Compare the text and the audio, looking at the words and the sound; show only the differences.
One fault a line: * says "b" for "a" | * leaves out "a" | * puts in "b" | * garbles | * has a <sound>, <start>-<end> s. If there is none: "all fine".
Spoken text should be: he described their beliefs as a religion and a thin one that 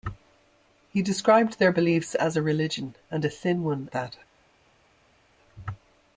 all fine